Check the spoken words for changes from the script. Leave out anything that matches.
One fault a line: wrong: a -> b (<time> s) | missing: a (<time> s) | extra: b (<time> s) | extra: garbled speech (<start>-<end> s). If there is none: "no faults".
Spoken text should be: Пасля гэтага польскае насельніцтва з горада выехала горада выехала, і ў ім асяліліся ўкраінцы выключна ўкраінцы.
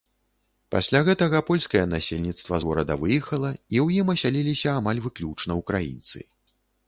missing: горада выехала (3.5 s)
wrong: ўкраінцы -> амаль (4.8 s)